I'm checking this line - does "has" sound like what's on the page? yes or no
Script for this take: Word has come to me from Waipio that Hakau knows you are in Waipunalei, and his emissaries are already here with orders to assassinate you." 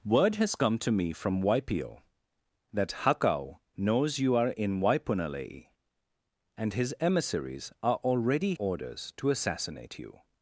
yes